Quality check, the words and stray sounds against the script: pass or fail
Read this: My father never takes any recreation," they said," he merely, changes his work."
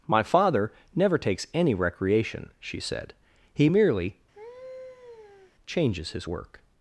fail